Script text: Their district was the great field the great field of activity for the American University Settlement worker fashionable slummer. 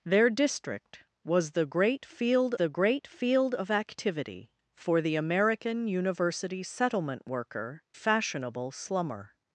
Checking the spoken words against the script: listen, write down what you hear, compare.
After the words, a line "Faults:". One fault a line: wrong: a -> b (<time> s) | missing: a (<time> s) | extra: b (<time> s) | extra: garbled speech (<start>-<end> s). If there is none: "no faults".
Their district was the great field the great field of activity for the American University Settlement worker fashionable slummer.
Faults:
no faults